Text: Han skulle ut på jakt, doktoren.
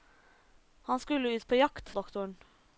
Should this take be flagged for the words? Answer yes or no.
no